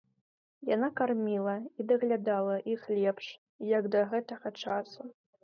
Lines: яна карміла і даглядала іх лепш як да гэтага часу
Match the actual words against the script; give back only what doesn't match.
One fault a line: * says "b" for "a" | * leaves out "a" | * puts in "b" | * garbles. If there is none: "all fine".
all fine